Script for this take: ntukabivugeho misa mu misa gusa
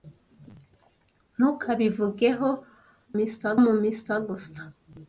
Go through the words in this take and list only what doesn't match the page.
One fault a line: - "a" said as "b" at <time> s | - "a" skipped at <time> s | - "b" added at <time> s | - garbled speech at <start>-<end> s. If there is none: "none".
none